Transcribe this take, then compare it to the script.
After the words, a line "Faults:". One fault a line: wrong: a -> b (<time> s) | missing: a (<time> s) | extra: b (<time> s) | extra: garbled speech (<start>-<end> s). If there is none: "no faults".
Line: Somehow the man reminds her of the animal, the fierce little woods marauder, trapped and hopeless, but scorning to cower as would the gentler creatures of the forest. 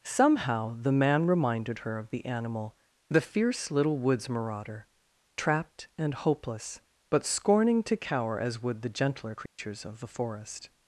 Somehow the man reminded her of the animal, the fierce little woods marauder, trapped and hopeless, but scorning to cower as would the gentler creatures of the forest.
Faults:
wrong: reminds -> reminded (1.3 s)